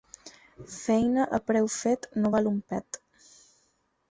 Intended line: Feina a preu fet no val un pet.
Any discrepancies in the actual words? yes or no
no